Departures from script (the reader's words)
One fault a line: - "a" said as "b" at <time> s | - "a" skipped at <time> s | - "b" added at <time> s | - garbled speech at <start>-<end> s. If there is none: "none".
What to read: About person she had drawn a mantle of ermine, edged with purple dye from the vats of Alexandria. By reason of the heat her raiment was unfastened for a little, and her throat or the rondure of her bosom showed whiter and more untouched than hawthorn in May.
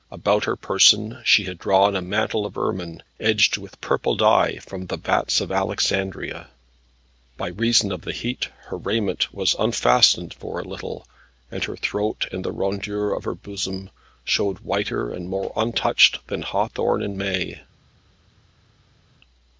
- "her" added at 0.5 s
- "or" said as "and" at 12.3 s